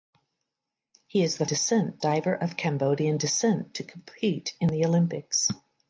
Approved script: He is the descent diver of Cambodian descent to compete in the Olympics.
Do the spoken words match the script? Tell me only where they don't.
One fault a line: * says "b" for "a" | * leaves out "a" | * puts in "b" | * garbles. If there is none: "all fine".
all fine